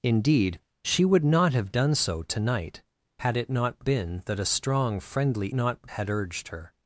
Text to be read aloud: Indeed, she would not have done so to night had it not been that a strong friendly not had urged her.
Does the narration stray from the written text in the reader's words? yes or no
no